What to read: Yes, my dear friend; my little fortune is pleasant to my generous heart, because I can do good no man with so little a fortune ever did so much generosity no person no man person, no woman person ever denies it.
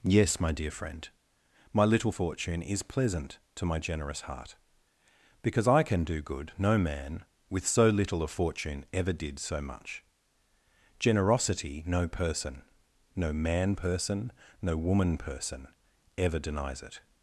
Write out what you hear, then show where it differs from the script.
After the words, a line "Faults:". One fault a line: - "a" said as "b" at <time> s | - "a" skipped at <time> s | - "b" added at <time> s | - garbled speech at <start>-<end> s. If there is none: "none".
Yes, my dear friend; my little fortune is pleasant to my generous heart, because I can do good no man with so little a fortune ever did so much generosity no person no man person, no woman person ever denies it.
Faults:
none